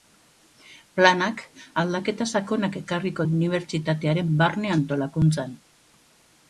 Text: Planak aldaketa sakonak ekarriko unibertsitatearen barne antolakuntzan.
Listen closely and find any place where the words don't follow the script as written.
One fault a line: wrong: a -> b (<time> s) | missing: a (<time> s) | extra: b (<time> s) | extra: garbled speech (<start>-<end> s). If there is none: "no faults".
no faults